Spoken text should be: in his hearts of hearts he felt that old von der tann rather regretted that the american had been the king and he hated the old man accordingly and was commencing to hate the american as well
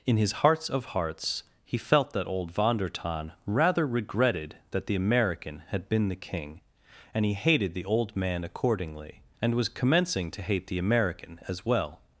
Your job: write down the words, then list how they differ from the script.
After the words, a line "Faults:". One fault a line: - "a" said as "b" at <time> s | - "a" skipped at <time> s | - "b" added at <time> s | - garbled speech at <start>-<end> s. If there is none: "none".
in his hearts of hearts he felt that old von der tann rather regretted that the american had been the king and he hated the old man accordingly and was commencing to hate the american as well
Faults:
none